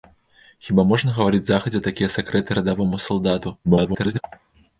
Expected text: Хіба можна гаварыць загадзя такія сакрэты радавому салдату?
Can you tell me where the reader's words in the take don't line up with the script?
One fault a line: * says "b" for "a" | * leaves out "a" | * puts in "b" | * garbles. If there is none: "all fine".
* garbles